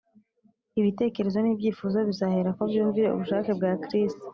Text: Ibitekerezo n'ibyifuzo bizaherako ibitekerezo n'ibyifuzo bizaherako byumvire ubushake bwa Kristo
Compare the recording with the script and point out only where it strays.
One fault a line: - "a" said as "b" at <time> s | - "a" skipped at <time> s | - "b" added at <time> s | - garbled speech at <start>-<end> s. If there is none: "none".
- "ibitekerezo n'ibyifuzo bizaherako" skipped at 2.6 s